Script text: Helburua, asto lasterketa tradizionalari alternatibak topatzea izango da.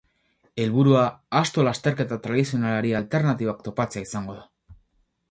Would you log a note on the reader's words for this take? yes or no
no